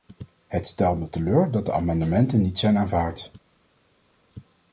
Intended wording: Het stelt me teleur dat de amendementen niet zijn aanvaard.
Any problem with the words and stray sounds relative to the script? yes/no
no